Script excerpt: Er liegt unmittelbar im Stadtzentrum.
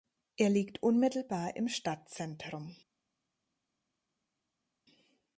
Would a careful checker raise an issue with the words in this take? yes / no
no